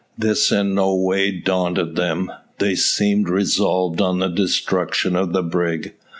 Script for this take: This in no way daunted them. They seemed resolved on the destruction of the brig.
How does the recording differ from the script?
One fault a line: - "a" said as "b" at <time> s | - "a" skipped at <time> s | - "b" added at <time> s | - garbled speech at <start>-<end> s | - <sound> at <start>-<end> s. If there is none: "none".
none